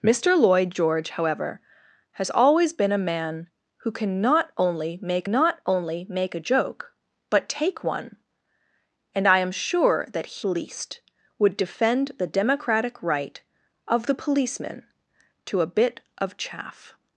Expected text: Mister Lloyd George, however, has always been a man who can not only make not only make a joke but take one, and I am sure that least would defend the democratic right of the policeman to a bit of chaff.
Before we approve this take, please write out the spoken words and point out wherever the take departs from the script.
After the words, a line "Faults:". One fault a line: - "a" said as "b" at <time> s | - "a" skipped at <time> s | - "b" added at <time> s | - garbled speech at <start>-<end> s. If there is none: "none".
Mister Lloyd George, however, has always been a man who can not only make not only make a joke but take one, and I am sure that least would defend the democratic right of the policeman to a bit of chaff.
Faults:
none